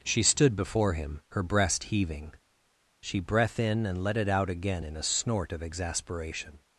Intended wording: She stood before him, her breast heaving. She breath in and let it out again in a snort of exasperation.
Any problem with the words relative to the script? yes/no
no